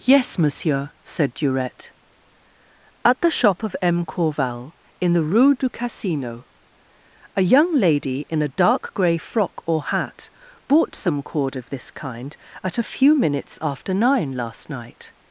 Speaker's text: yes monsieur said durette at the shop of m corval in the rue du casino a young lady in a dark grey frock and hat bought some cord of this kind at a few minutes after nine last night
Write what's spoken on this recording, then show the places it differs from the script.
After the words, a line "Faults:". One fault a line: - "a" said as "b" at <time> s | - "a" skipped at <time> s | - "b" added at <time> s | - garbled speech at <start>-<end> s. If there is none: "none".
yes monsieur said durette at the shop of m corval in the rue du casino a young lady in a dark grey frock or hat bought some cord of this kind at a few minutes after nine last night
Faults:
- "and" said as "or" at 9.7 s